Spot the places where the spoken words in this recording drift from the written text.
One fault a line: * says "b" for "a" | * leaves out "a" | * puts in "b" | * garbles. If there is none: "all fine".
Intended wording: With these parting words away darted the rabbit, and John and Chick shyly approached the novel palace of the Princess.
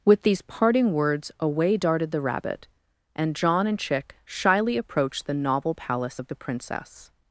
all fine